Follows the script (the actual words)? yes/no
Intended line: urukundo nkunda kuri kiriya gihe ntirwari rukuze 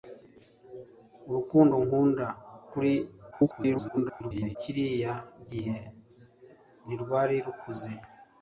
no